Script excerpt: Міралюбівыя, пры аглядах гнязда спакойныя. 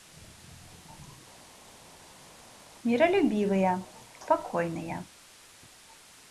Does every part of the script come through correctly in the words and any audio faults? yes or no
no